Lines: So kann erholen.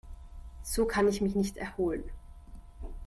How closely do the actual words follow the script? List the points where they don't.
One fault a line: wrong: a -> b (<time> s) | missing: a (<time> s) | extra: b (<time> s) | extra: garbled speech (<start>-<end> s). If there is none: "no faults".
extra: ich mich nicht (1.1 s)